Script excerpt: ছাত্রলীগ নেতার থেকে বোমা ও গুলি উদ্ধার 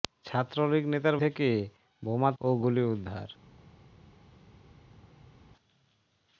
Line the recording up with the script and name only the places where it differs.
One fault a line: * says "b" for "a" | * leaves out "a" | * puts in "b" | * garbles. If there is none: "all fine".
all fine